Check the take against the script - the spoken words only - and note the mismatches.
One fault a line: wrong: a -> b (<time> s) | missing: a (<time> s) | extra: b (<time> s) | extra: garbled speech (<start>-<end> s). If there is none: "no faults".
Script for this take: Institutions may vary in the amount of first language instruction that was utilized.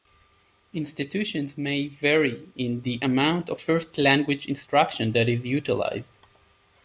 wrong: was -> is (5.3 s)